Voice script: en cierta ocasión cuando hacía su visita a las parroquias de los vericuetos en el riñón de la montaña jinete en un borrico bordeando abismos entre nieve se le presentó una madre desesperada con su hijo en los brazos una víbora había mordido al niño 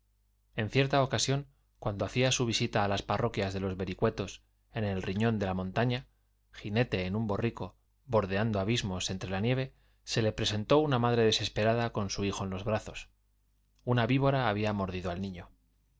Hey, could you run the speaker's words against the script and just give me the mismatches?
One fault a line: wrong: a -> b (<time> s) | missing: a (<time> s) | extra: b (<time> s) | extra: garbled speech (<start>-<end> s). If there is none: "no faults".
extra: la (9.3 s)